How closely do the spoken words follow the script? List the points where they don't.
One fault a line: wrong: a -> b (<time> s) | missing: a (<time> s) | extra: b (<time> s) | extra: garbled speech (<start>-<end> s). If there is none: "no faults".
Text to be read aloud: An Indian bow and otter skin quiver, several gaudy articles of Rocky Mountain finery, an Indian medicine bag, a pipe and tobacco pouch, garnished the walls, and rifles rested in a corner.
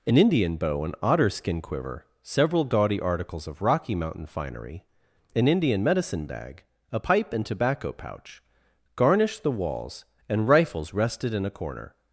no faults